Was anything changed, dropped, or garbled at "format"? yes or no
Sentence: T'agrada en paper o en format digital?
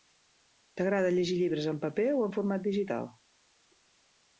no